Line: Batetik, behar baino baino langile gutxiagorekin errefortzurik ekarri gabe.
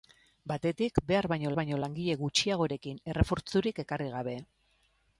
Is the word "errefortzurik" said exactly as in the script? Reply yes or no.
yes